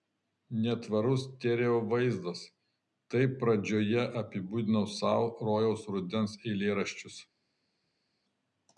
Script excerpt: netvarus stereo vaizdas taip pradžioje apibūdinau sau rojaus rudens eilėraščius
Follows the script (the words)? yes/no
yes